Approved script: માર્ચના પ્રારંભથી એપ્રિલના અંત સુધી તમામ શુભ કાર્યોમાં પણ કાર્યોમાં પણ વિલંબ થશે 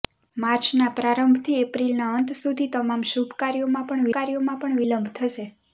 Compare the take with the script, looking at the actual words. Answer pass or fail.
pass